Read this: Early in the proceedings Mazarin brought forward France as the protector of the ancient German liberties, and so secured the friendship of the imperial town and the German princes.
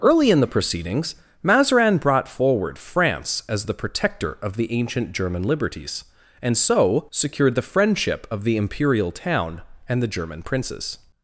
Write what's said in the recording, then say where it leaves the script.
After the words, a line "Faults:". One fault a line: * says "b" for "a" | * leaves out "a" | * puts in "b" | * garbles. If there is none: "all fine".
Early in the proceedings Mazarin brought forward France as the protector of the ancient German liberties, and so secured the friendship of the imperial town and the German princes.
Faults:
all fine